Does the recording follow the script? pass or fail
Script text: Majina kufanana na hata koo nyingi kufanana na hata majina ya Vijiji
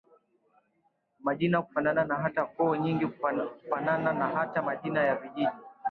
pass